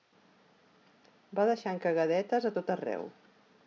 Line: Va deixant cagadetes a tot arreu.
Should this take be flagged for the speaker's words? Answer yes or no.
no